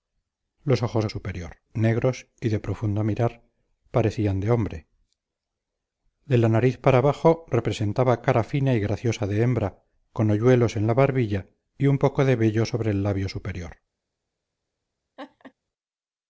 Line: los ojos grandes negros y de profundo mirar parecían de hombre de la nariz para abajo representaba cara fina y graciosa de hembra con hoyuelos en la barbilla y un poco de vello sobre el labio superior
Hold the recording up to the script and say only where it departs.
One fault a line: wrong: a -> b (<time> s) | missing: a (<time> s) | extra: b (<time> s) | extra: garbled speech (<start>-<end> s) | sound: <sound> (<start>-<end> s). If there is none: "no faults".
wrong: grandes -> superior (1.1 s)
sound: laugh (15.2-15.5 s)